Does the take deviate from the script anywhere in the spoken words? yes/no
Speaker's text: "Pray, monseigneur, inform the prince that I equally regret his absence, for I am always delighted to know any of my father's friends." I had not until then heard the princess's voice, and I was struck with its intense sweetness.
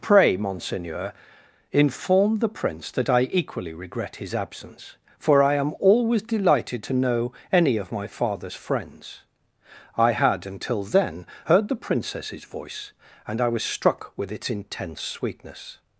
yes